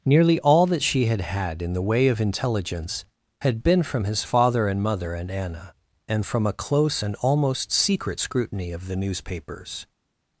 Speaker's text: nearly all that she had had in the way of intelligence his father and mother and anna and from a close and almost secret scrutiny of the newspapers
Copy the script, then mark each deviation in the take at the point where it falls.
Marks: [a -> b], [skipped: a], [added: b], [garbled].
nearly all that she had had in the way of intelligence [added: had been from] his father and mother and anna and from a close and almost secret scrutiny of the newspapers